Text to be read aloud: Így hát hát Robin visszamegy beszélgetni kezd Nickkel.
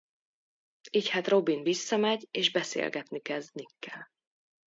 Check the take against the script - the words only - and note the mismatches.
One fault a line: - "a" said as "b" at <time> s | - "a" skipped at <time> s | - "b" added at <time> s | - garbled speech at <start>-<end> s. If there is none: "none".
- "hát" skipped at 1.3 s
- "és" added at 2.3 s